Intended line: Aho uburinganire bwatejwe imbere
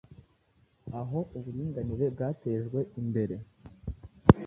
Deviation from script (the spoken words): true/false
false